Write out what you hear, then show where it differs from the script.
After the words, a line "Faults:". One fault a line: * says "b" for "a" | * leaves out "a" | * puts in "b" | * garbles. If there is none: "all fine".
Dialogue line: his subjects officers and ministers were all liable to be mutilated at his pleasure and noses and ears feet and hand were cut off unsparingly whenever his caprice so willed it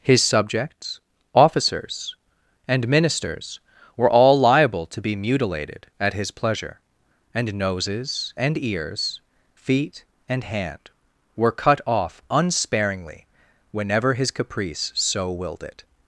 his subjects officers and ministers were all liable to be mutilated at his pleasure and noses and ears feet and hand were cut off unsparingly whenever his caprice so willed it
Faults:
all fine